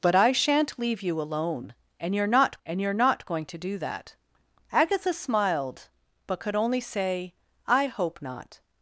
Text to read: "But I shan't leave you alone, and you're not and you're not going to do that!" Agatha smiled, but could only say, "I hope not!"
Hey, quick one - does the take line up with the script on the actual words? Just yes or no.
yes